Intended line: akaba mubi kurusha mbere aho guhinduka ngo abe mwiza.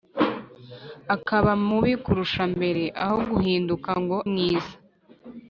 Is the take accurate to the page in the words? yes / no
no